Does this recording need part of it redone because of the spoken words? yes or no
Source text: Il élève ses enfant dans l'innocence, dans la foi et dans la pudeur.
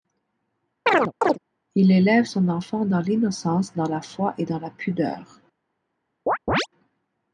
yes